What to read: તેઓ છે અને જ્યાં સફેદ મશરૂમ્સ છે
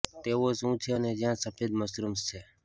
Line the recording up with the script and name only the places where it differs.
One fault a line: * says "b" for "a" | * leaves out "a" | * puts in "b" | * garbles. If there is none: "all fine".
* puts in "શું"